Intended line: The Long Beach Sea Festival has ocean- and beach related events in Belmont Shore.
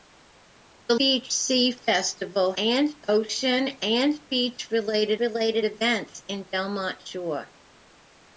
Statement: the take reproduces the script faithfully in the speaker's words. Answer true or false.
false